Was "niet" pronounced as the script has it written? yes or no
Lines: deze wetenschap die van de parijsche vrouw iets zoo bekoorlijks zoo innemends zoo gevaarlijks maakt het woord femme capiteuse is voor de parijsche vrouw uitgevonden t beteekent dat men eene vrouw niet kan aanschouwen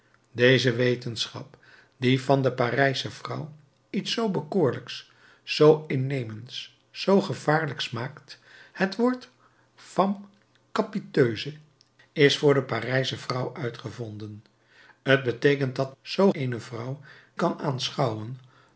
no